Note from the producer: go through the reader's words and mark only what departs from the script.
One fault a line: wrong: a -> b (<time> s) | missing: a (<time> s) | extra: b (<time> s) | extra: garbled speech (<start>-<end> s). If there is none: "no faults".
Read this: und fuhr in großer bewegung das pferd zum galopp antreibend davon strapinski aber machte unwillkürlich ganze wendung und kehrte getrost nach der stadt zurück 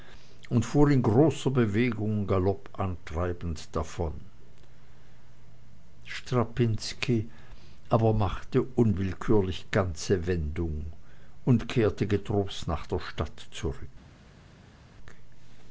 missing: das pferd zum (2.3 s)